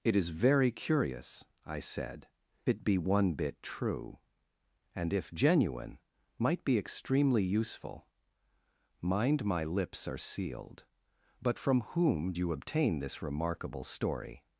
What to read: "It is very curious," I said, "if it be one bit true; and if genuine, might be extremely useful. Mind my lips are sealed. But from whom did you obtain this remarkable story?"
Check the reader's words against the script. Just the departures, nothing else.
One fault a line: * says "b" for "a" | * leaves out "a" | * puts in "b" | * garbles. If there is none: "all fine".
* leaves out "if"
* leaves out "did"